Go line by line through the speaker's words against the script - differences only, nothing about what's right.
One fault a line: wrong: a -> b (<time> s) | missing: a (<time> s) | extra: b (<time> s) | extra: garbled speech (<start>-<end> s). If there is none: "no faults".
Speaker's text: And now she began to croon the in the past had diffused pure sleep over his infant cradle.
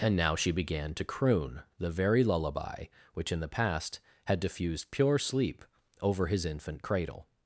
extra: very lullaby which (1.9 s)